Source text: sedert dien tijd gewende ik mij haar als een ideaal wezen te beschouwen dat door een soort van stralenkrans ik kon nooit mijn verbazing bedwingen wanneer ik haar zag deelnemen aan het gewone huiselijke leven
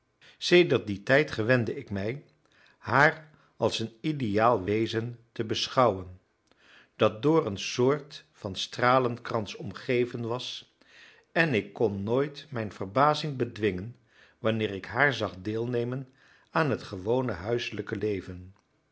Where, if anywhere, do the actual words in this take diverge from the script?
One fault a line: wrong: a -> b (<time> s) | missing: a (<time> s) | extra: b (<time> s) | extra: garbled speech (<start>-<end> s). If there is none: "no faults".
extra: omgeven was en (9.5 s)